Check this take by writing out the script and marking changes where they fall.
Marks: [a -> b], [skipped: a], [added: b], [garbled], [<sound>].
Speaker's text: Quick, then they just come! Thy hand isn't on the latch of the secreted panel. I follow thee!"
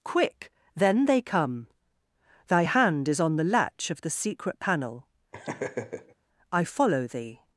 Quick, then they [skipped: just] come! Thy hand [isn't -> is] on the latch of the [secreted -> secret] panel. [laugh] I follow thee!"